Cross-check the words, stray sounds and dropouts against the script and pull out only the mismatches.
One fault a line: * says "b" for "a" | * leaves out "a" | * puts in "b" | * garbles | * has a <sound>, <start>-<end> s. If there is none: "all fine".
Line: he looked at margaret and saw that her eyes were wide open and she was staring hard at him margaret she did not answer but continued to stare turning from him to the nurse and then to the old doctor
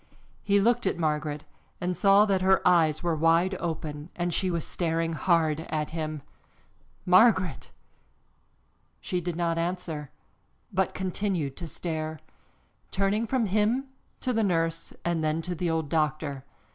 all fine